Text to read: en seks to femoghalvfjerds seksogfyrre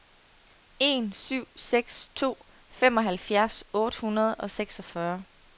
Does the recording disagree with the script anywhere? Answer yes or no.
yes